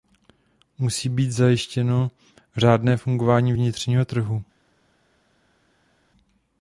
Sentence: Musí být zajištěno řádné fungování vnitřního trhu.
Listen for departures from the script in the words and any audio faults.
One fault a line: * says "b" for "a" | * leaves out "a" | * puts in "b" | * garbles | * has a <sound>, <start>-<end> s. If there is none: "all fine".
all fine